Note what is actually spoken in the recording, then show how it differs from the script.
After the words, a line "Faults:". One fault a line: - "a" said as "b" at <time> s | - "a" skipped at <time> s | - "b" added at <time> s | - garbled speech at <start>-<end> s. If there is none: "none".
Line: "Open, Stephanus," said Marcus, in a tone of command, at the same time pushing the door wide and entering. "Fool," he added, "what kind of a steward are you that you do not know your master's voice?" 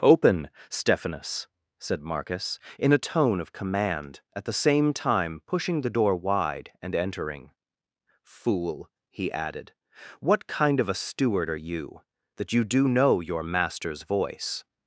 "Open, Stephanus," said Marcus, in a tone of command, at the same time pushing the door wide and entering. "Fool," he added, "what kind of a steward are you that you do know your master's voice?"
Faults:
- "not" skipped at 12.9 s